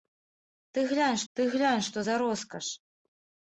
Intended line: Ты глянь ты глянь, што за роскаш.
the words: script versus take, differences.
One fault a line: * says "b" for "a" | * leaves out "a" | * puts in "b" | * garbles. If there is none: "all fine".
all fine